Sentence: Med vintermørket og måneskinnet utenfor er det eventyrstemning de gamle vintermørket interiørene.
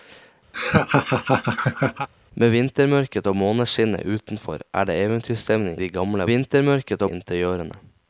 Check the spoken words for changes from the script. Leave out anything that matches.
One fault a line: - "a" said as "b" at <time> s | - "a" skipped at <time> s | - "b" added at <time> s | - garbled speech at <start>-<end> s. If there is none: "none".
none